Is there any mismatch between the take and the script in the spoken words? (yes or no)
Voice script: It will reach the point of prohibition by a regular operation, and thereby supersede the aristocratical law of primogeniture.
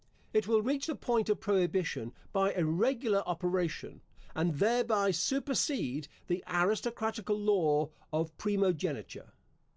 no